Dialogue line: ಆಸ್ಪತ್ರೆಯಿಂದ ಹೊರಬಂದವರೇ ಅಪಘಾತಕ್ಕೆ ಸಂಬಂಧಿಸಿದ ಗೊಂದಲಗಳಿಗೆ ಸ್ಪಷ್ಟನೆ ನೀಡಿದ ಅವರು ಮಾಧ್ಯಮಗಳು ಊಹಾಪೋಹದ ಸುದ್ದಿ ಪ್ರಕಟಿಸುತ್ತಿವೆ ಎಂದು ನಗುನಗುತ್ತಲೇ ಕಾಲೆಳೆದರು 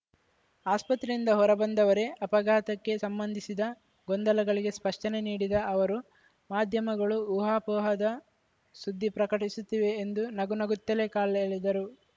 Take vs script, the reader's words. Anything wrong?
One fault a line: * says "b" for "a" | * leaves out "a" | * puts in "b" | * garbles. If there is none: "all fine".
all fine